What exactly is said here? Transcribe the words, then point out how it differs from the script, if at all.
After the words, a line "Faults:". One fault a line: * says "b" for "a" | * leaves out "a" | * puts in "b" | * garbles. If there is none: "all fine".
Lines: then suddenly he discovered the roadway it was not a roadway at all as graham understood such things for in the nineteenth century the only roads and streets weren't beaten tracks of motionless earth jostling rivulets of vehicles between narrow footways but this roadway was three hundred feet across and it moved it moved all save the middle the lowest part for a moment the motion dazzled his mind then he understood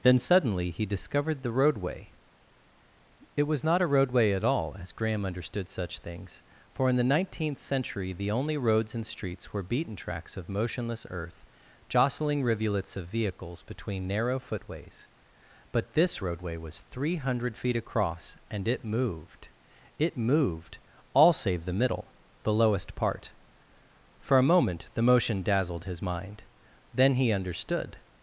then suddenly he discovered the roadway it was not a roadway at all as graham understood such things for in the nineteenth century the only roads and streets were beaten tracks of motionless earth jostling rivulets of vehicles between narrow footways but this roadway was three hundred feet across and it moved it moved all save the middle the lowest part for a moment the motion dazzled his mind then he understood
Faults:
* says "were" for "weren't"